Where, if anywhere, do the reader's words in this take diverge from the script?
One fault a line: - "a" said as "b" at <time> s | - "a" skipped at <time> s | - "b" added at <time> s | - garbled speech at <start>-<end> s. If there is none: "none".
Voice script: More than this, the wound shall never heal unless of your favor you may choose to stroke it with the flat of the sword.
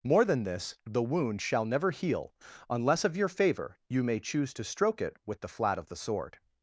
none